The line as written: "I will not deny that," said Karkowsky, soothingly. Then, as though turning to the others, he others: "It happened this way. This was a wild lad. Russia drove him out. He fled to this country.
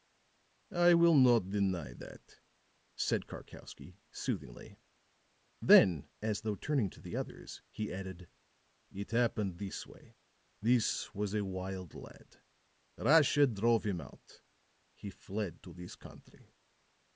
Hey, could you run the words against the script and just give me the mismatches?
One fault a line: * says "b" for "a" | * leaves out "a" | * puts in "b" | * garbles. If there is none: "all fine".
* says "added" for "others"